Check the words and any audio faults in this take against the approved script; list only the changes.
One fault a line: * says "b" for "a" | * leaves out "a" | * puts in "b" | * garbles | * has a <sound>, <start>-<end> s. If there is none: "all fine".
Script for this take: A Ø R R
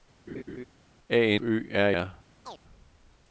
* has a laugh, 0.3-0.7 s
* has a chirp, 2.4-2.6 s